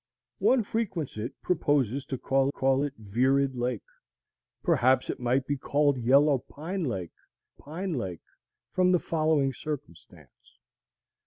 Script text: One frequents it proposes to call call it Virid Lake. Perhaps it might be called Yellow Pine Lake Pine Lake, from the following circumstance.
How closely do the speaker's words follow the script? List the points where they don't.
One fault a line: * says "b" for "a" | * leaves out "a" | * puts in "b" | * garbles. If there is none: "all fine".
all fine